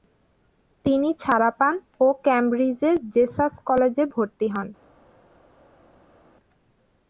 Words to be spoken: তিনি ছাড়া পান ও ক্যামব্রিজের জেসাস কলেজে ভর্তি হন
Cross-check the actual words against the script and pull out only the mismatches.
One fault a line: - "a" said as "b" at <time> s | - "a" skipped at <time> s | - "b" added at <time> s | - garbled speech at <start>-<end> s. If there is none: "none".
none